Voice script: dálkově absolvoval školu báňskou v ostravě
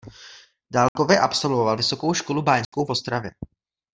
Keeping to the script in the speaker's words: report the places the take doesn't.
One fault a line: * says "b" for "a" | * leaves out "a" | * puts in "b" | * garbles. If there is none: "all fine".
* puts in "vysokou"